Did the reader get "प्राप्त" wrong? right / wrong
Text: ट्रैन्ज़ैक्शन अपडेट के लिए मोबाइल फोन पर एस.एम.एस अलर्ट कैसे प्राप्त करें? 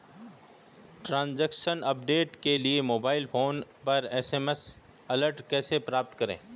right